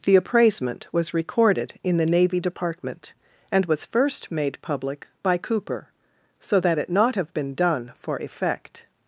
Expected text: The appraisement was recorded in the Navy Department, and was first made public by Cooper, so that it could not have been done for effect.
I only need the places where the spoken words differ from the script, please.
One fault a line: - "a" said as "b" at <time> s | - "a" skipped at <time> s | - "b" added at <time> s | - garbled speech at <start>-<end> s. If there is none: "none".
- "could" skipped at 6.9 s